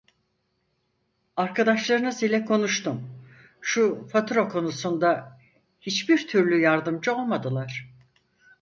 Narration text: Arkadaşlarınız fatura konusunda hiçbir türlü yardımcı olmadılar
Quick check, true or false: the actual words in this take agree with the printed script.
false